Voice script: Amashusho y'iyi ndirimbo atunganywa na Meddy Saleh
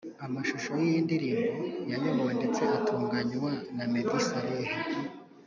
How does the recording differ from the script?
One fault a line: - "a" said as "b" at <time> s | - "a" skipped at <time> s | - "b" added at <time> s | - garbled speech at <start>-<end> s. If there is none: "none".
- "yayobowe ndetse" added at 1.9 s